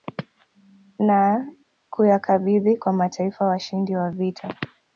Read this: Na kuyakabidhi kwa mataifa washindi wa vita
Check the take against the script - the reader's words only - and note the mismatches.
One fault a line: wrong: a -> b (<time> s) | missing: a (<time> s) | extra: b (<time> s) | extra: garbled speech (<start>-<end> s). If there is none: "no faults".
no faults